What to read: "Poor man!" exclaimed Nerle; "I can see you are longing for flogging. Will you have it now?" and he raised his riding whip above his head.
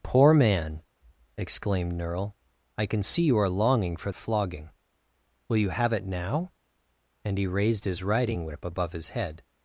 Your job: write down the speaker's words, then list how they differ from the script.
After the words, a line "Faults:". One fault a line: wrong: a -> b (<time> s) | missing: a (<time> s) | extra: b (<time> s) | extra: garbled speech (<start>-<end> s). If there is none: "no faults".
"Poor man!" exclaimed Nerle; "I can see you are longing for flogging. Will you have it now?" and he raised his riding whip above his head.
Faults:
no faults